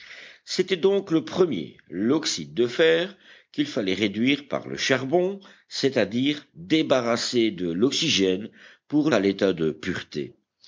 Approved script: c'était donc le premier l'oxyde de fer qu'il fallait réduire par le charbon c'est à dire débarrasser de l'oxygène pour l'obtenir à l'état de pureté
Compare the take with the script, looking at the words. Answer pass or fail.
fail